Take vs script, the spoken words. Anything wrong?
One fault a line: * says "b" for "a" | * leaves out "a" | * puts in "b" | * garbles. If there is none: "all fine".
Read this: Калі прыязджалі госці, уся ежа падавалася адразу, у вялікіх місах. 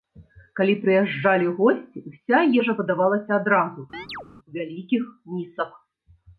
all fine